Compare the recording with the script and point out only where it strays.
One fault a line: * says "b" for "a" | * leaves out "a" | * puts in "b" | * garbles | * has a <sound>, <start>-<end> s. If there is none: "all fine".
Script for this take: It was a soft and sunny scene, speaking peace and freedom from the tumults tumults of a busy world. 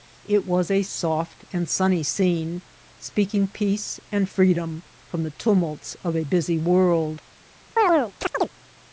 * leaves out "tumults"
* has a chirp, 7.8-8.5 s